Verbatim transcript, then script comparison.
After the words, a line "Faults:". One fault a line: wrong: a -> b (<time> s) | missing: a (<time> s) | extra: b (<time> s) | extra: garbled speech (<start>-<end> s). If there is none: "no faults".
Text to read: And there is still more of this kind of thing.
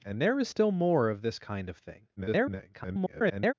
And there is still more of this kind of thing. [garbled]
Faults:
extra: garbled speech (2.2-3.5 s)